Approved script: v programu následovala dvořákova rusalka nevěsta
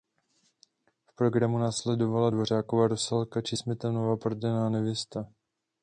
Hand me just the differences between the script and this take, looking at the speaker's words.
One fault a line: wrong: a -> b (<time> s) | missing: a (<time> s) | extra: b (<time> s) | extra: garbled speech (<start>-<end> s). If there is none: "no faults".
extra: či smetanova prodaná (3.4 s)